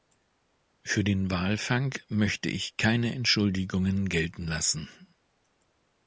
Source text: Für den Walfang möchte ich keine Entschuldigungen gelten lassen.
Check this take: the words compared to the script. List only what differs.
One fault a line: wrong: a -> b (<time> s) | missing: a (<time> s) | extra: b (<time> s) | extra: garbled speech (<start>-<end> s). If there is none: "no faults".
no faults